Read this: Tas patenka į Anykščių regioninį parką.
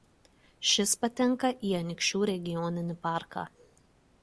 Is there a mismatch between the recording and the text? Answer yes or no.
yes